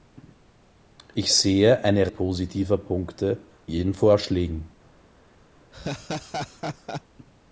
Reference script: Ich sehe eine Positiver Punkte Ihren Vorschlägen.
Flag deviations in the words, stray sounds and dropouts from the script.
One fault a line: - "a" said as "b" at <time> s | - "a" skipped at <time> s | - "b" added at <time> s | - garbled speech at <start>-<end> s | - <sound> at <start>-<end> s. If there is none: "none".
- laugh at 5.7-7.0 s